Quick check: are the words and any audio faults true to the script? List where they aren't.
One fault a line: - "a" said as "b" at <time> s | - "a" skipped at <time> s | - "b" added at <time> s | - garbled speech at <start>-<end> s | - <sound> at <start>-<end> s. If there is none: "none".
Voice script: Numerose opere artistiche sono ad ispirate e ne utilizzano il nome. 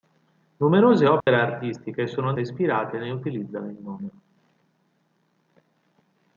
- dropout at 1.2-1.3 s